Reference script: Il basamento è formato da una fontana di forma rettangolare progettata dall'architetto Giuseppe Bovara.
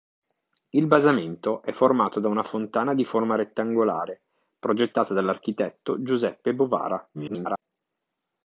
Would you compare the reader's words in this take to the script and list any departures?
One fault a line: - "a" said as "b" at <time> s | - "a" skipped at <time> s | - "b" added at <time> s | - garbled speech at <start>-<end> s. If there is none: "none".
- garbled speech at 7.1-7.6 s